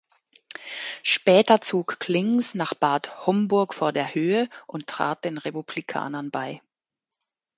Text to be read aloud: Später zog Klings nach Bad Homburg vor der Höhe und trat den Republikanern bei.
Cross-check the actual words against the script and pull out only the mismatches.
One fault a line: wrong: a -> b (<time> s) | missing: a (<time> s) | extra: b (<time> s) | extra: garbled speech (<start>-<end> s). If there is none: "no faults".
no faults